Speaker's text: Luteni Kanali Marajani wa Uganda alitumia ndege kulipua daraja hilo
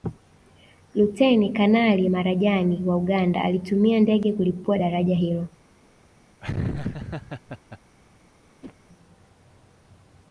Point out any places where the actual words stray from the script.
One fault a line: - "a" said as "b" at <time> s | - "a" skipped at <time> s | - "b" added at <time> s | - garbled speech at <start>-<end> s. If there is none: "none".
none